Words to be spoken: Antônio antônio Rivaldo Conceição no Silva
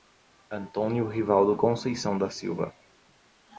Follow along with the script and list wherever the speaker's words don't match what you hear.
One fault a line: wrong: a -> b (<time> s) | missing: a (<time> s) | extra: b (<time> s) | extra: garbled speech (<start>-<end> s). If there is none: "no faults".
missing: antônio (1.1 s)
wrong: no -> da (2.2 s)